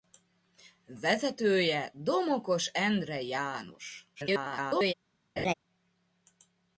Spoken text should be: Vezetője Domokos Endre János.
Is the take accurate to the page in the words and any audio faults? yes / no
no